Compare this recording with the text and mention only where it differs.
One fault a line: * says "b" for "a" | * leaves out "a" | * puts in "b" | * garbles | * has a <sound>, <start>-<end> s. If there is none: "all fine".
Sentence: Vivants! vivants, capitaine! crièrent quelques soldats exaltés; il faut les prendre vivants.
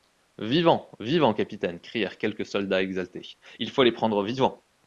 all fine